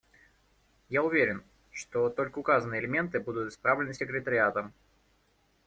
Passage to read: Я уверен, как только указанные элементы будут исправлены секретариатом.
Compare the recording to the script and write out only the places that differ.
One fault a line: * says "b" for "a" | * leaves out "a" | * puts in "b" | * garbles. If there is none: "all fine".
* says "что" for "как"